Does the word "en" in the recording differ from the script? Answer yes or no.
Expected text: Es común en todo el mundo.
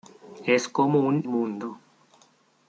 yes